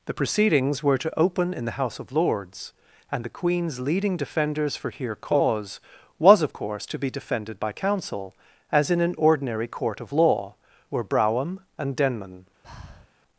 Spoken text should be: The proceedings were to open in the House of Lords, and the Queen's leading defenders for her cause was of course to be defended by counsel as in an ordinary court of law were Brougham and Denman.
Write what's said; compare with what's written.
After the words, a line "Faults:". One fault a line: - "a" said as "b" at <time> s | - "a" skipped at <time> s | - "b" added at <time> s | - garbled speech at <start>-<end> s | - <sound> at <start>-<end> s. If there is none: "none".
The proceedings were to open in the House of Lords, and the Queen's leading defenders for here cause was of course to be defended by counsel as in an ordinary court of law were Brougham and Denman.
Faults:
- "her" said as "here" at 4.9 s
- breath at 12.6-13.1 s